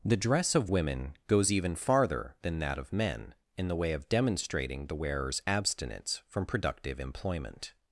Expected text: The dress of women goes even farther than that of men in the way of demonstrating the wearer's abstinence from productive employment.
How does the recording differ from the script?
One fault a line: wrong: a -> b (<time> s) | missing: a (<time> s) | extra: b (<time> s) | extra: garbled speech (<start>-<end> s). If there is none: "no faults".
no faults